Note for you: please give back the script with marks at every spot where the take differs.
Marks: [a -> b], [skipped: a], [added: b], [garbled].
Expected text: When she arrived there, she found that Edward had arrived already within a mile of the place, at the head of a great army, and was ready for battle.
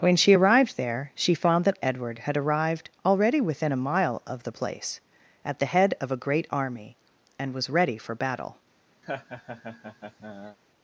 When she arrived there, she found that Edward had arrived already within a mile of the place, at the head of a great army, and was ready for battle.